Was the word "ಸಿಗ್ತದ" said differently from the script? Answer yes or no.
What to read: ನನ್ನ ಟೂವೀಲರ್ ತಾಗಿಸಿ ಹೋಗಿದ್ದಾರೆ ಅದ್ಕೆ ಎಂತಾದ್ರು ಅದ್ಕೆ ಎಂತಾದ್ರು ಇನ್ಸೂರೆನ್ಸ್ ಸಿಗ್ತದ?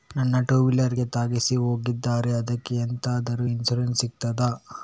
no